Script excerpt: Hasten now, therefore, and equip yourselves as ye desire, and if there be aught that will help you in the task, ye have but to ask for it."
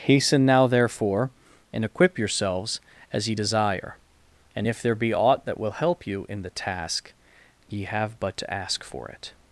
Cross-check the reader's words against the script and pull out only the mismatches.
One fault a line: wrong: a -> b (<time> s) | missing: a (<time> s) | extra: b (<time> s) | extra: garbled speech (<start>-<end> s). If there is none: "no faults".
no faults